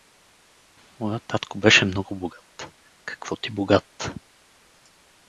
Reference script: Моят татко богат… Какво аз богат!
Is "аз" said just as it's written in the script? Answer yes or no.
no